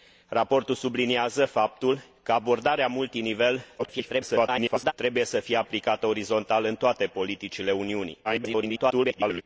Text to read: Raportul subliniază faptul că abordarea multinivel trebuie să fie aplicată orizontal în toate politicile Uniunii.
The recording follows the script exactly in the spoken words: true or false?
false